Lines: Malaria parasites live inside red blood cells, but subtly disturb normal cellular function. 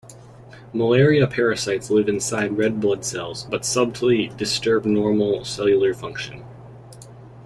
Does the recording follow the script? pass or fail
pass